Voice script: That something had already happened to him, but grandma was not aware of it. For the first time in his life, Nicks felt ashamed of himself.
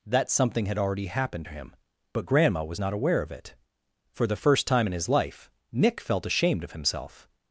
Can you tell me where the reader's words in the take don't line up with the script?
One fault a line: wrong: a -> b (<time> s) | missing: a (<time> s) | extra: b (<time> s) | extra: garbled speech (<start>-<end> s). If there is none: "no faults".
wrong: Nicks -> Nick (5.7 s)